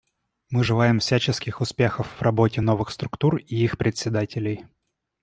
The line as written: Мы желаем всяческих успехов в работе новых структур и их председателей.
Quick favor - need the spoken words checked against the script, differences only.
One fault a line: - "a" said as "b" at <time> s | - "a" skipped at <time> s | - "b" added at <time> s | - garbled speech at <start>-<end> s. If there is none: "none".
none